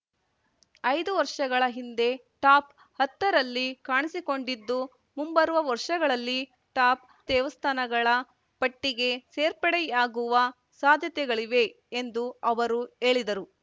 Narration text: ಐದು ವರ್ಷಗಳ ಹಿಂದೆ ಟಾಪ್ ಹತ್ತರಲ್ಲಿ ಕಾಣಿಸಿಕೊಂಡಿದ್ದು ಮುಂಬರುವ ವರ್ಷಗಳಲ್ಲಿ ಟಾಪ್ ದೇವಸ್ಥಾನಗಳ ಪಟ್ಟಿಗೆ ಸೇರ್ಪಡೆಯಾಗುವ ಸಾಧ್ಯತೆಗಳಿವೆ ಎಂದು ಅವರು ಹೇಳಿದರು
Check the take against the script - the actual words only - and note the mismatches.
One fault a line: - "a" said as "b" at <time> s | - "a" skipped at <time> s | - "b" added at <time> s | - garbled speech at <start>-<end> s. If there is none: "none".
none